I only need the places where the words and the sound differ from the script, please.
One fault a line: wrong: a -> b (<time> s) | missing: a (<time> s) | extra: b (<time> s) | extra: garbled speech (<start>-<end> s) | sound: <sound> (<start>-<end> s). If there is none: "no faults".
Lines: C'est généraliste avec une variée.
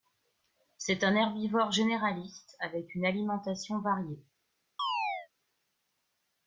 extra: un herbivore (1.0 s)
extra: alimentation (3.0 s)
sound: chirp (4.8-5.3 s)